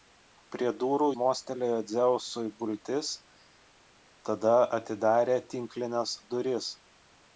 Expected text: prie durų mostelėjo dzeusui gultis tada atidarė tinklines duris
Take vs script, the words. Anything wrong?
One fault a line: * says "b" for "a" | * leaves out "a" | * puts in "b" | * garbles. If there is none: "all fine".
all fine